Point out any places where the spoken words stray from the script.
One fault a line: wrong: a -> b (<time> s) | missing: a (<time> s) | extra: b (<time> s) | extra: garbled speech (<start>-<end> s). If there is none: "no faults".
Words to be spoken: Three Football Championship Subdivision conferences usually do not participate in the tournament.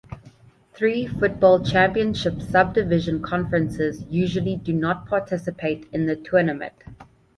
no faults